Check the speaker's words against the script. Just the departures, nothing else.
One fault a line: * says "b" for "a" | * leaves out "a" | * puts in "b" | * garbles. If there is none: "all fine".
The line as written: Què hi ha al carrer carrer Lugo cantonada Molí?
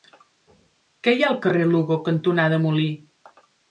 * leaves out "carrer"